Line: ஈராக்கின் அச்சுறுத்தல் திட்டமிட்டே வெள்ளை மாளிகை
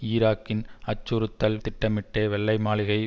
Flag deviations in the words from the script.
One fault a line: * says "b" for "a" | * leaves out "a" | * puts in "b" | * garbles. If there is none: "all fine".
all fine